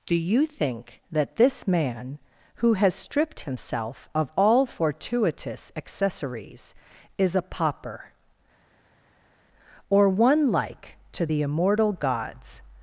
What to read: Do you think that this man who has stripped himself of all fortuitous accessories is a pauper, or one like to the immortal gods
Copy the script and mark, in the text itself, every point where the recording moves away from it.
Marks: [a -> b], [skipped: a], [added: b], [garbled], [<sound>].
Do you think that this man who has stripped himself of all fortuitous accessories is a pauper, or one like to the immortal gods